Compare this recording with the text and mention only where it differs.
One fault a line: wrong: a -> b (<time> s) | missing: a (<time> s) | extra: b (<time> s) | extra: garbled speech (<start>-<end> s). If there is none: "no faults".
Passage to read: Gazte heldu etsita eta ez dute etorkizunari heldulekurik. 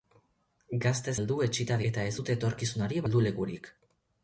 no faults